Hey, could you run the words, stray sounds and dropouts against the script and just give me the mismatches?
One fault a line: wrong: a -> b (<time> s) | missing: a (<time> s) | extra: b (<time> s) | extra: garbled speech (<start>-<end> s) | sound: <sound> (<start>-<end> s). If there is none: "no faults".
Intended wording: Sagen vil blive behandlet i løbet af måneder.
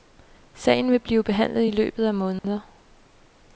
sound: dropout (2.4-2.4 s)